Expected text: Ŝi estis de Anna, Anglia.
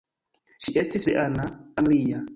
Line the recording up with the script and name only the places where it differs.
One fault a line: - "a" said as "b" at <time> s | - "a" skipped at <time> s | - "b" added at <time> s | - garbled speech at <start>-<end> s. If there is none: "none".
none